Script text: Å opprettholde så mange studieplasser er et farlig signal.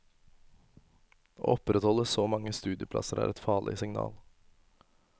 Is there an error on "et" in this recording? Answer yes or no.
no